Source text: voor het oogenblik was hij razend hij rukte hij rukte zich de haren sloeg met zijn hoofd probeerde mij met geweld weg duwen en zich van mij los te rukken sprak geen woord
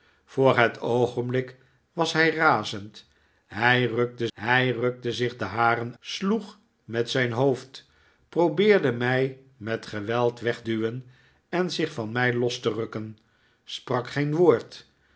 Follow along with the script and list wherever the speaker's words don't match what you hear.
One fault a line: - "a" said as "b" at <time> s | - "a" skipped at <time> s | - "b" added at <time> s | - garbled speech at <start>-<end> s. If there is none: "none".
none